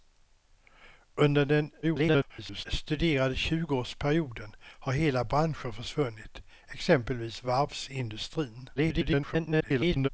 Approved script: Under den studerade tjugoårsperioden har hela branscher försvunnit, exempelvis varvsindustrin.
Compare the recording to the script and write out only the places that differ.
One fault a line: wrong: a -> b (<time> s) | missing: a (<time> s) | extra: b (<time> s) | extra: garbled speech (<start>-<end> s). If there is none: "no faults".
extra: garbled speech (1.8-2.7 s)
extra: garbled speech (8.8-10.1 s)